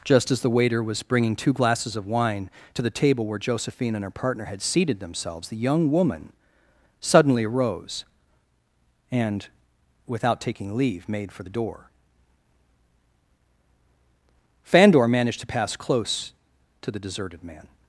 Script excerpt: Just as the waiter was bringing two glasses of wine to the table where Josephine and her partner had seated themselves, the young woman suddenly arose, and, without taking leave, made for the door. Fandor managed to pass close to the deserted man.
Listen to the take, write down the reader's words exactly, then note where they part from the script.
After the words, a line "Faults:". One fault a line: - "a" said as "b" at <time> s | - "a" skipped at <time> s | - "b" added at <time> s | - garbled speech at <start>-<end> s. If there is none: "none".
Just as the waiter was bringing two glasses of wine to the table where Josephine and her partner had seated themselves, the young woman suddenly arose, and, without taking leave, made for the door. Fandor managed to pass close to the deserted man.
Faults:
none